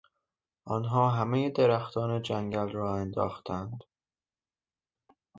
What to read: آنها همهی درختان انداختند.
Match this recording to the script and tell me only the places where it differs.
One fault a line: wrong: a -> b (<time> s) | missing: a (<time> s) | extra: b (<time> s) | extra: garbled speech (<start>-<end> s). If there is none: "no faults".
extra: جنگل را (2.2 s)